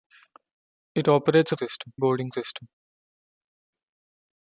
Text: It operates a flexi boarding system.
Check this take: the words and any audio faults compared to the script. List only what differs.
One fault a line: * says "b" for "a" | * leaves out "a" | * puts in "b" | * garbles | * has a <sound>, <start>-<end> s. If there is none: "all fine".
* says "system" for "flexi"